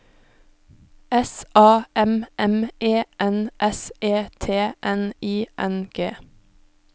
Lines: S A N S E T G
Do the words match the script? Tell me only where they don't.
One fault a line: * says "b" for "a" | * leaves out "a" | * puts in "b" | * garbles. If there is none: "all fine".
* puts in "M M E"
* puts in "N I N"